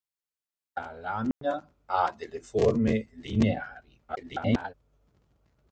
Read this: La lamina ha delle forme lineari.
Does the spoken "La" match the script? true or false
true